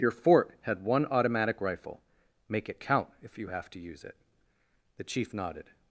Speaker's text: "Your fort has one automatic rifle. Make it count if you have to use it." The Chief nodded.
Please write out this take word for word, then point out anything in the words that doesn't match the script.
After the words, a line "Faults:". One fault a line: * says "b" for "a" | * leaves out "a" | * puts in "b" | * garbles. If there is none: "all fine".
"Your fort had one automatic rifle. Make it count if you have to use it." The Chief nodded.
Faults:
* says "had" for "has"